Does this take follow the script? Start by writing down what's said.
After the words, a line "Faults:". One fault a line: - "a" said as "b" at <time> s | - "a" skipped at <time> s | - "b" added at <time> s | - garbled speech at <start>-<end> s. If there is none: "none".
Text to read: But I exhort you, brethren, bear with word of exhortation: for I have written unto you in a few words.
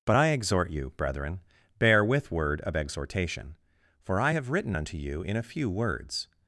But I exhort you, brethren, bear with word of exhortation: for I have written unto you in a few words.
Faults:
none